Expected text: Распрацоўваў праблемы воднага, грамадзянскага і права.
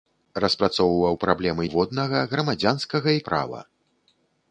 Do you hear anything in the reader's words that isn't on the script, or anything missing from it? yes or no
no